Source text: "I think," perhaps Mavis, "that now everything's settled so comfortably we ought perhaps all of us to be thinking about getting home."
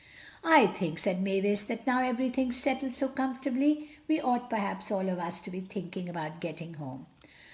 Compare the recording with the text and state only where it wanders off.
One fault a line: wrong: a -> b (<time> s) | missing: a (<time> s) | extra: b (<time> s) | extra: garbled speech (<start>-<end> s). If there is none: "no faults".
wrong: perhaps -> said (1.0 s)